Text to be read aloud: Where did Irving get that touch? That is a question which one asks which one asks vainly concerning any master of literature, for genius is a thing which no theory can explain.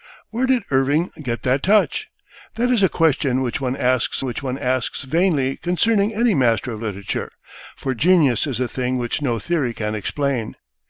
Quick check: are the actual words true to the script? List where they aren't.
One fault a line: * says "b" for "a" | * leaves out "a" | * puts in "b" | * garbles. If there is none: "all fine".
all fine